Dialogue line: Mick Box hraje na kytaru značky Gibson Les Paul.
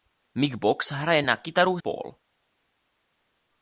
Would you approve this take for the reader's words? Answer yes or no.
no